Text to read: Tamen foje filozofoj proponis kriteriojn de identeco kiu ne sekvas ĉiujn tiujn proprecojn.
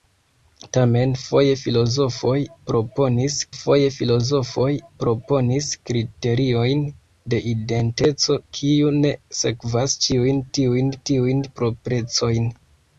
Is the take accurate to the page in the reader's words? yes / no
no